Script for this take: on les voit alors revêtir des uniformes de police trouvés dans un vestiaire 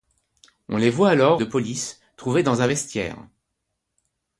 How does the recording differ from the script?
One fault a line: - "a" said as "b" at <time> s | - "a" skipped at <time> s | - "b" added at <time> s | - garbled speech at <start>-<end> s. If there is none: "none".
- "revêtir des uniformes" skipped at 1.4 s